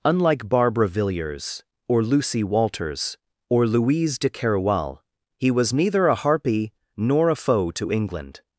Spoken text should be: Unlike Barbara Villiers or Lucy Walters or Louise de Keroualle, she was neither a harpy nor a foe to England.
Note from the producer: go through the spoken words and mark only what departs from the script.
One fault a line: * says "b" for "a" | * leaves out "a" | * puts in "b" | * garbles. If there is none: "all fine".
* says "he" for "she"